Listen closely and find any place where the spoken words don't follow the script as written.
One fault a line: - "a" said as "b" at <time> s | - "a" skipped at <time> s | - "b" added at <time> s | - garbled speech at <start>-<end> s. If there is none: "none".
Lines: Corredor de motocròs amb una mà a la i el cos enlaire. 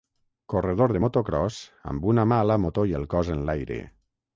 - "moto" added at 2.7 s